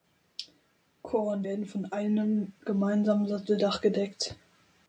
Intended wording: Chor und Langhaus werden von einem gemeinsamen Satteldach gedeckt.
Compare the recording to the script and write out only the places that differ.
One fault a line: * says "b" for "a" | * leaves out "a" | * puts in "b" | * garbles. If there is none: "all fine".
* leaves out "Langhaus"